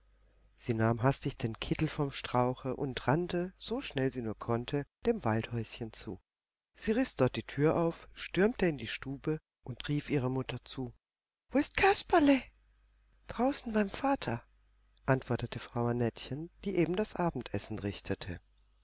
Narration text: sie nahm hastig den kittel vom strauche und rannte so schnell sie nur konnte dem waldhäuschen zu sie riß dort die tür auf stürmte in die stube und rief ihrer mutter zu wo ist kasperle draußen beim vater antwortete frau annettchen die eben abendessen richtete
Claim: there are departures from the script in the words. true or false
true